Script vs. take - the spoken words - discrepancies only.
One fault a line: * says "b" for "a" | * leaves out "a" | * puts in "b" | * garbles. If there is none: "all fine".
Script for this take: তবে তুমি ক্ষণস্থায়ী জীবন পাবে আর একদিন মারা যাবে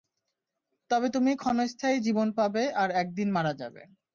all fine